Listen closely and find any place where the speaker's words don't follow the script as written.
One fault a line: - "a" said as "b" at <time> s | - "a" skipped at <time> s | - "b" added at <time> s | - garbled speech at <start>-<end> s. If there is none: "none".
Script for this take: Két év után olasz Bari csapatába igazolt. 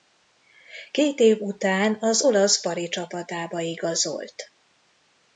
- "az" added at 2.0 s